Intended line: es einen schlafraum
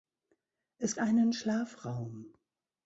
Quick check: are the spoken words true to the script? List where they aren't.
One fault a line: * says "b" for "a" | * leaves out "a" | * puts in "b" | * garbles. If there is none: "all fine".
all fine